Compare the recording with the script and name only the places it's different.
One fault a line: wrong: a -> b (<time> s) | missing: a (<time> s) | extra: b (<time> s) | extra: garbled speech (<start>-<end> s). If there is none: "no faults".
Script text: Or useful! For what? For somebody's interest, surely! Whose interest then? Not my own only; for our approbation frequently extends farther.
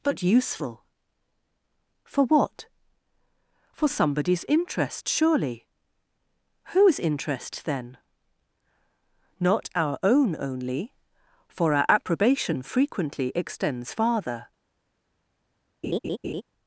wrong: Or -> But (0.0 s)
wrong: my -> our (9.8 s)